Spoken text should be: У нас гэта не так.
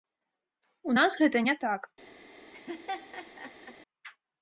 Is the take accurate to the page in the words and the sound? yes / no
no